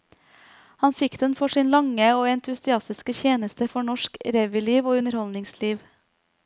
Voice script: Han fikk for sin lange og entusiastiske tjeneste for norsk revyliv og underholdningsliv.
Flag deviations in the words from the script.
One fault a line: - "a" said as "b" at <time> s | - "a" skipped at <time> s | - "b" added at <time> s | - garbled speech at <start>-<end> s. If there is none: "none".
- "den" added at 1.2 s